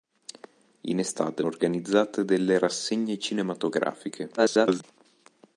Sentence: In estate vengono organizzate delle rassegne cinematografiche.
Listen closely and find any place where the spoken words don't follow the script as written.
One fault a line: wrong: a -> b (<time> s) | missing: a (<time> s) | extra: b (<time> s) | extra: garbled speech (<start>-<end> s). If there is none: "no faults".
missing: vengono (1.4 s)
extra: garbled speech (4.4-4.8 s)